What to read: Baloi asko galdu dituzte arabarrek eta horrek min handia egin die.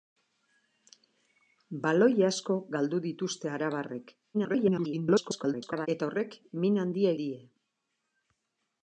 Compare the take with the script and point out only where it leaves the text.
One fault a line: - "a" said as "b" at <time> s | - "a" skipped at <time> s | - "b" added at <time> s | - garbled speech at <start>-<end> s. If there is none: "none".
- garbled speech at 4.3-5.9 s
- "egin" skipped at 7.1 s